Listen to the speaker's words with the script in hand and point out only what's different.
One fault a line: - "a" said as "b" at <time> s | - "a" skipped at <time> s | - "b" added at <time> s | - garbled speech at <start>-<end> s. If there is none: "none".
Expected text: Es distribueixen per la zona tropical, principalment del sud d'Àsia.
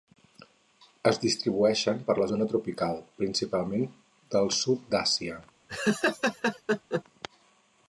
none